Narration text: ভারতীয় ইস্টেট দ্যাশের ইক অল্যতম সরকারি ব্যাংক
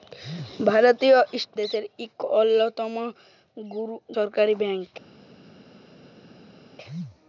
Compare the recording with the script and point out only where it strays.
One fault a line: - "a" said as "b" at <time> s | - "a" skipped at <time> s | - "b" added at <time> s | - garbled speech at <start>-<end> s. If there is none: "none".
none